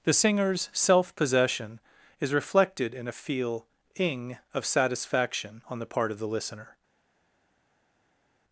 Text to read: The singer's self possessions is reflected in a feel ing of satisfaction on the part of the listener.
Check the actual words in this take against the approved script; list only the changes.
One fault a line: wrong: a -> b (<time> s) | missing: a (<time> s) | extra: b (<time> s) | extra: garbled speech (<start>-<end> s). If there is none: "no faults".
wrong: possessions -> possession (1.1 s)